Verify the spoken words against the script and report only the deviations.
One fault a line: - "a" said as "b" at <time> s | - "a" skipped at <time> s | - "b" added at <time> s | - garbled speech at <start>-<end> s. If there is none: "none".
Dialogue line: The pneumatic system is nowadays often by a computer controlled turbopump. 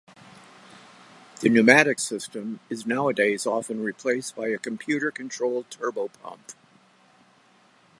- "replaced" added at 3.8 s